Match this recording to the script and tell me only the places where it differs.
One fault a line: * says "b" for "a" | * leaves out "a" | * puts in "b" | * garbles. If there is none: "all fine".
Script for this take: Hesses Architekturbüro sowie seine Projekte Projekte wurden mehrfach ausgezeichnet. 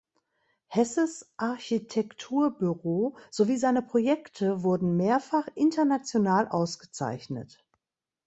* leaves out "Projekte"
* puts in "international"